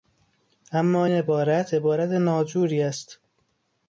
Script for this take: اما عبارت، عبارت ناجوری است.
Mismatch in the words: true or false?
false